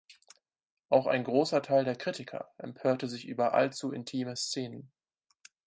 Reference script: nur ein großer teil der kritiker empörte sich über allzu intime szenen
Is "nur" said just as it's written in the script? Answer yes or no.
no